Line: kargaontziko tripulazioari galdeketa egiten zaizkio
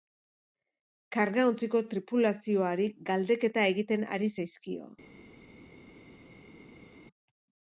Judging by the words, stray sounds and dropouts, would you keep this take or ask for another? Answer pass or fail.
fail